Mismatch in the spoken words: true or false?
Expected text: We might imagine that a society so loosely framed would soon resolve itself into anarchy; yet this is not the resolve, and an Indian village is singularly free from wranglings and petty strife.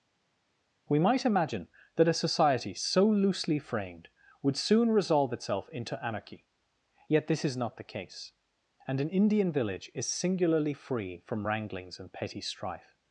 true